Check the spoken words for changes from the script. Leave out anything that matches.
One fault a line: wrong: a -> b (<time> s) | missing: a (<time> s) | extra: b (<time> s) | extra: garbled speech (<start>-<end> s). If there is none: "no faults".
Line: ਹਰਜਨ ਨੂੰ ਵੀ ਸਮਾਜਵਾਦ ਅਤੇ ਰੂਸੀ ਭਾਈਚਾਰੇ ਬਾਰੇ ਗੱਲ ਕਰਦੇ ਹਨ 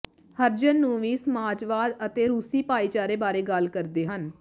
no faults